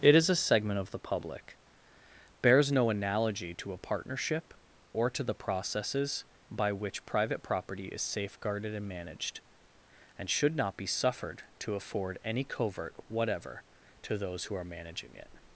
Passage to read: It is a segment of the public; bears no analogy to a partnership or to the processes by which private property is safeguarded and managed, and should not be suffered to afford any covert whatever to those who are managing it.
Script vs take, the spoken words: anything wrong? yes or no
no